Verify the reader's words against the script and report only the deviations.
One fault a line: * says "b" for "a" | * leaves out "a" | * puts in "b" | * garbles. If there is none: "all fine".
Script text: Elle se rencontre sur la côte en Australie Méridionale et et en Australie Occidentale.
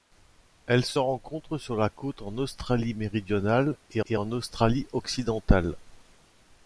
all fine